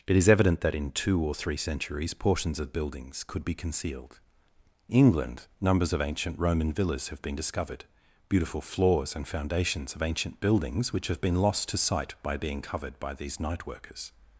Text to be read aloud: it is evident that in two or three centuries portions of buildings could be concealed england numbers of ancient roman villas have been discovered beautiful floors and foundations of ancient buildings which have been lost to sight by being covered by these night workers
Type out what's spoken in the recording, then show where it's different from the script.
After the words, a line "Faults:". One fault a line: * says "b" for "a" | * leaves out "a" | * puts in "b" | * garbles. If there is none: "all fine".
it is evident that in two or three centuries portions of buildings could be concealed england numbers of ancient roman villas have been discovered beautiful floors and foundations of ancient buildings which have been lost to sight by being covered by these night workers
Faults:
all fine